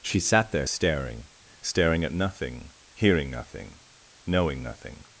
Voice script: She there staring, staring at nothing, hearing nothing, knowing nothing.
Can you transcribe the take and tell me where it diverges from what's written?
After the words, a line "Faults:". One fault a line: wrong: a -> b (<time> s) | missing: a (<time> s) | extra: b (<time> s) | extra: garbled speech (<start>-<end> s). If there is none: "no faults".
She sat there staring, staring at nothing, hearing nothing, knowing nothing.
Faults:
extra: sat (0.2 s)